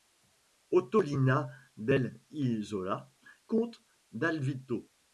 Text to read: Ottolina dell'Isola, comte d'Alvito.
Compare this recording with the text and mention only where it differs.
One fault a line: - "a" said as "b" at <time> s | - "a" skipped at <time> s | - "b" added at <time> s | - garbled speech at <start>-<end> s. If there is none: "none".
none